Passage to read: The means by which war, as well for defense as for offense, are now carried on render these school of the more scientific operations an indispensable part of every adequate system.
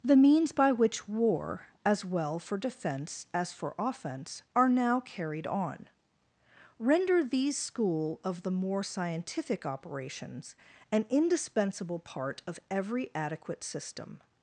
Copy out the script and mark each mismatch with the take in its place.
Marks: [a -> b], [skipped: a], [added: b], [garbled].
The means by which war, as well for defense as for offense, are now carried on render these school of the more scientific operations an indispensable part of every adequate system.